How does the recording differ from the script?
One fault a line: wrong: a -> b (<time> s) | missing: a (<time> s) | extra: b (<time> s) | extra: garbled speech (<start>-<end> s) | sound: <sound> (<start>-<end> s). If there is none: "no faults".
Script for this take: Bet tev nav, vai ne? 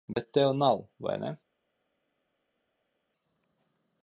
no faults